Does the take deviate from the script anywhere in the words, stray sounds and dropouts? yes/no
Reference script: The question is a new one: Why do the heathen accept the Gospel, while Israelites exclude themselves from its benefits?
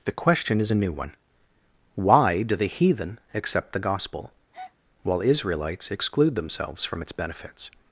yes